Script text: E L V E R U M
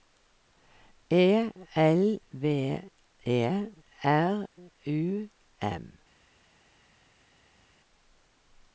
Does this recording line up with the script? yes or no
yes